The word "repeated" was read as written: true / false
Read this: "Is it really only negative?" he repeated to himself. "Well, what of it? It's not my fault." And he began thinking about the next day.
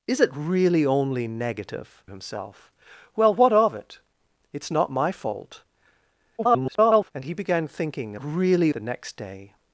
false